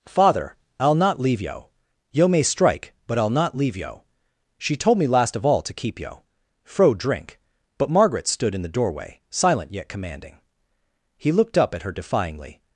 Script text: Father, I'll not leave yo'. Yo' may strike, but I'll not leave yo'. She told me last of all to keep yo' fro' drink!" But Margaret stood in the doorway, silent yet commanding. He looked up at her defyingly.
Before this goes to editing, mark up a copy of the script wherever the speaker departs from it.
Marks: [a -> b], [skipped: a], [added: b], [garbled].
Father, I'll not leave yo'. Yo' may strike, but I'll not leave yo'. She told me last of all to keep yo' fro' drink!" But Margaret stood in the doorway, silent yet commanding. He looked up at her defyingly.